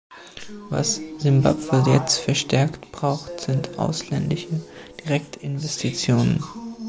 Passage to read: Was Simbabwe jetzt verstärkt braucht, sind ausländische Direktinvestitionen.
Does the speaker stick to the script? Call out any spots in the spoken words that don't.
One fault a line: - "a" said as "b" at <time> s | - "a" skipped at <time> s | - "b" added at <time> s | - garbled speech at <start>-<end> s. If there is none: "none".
none